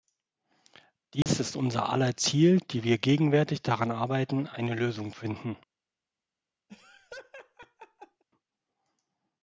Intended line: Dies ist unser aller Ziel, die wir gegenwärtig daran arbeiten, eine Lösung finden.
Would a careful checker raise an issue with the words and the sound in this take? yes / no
yes